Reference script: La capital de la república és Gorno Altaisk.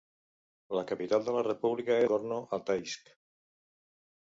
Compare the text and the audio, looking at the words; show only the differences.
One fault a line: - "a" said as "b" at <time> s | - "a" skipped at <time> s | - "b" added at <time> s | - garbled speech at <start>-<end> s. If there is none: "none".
- "és" skipped at 2.0 s